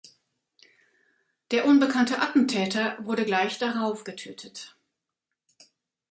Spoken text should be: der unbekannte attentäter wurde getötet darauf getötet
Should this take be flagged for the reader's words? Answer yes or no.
yes